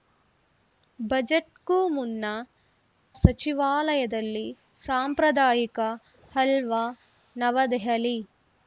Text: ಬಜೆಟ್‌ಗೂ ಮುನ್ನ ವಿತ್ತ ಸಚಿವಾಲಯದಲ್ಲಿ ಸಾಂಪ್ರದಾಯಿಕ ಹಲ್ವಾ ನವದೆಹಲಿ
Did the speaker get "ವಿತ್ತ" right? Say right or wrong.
wrong